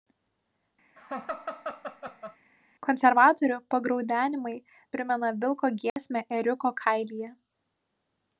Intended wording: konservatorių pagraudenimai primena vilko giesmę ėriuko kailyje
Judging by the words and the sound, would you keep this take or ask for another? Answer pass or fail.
fail